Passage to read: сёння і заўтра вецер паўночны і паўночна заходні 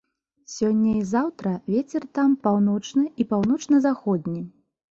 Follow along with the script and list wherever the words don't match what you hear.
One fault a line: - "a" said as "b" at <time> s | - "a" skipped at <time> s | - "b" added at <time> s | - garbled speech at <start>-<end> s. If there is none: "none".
- "там" added at 2.2 s